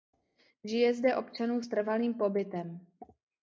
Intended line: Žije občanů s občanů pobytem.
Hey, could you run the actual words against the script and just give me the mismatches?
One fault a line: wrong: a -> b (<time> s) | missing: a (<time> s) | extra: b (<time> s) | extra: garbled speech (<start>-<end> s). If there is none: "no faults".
extra: zde (0.9 s)
wrong: občanů -> trvalým (1.7 s)